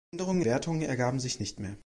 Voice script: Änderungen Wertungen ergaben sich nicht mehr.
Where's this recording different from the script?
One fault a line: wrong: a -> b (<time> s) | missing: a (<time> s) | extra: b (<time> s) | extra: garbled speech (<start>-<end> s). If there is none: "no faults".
no faults